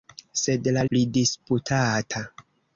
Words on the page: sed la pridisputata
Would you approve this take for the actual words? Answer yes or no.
yes